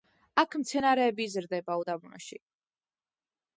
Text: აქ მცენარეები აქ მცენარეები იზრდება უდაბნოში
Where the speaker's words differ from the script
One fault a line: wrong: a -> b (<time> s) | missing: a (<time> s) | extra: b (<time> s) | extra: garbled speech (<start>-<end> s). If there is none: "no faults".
missing: აქ მცენარეები (1.3 s)